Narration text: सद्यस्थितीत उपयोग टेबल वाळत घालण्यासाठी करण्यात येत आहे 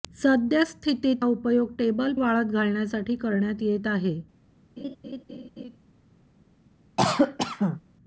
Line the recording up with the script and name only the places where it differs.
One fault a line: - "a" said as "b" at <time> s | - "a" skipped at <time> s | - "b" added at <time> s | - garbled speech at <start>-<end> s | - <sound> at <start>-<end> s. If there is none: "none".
- laugh at 4.8-5.8 s
- cough at 7.0-7.8 s